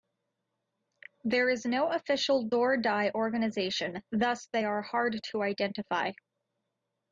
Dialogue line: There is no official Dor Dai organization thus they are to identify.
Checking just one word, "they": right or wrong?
right